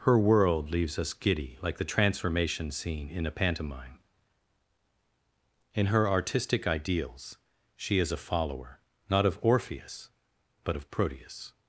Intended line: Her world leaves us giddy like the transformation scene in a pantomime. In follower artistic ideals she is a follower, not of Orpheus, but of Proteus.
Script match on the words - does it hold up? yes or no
no